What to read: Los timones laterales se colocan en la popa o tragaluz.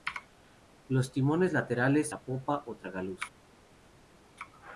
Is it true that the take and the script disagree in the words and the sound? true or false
true